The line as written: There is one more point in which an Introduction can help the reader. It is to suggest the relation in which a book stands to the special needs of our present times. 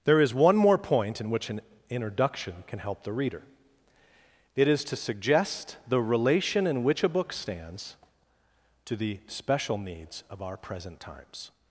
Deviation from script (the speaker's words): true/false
false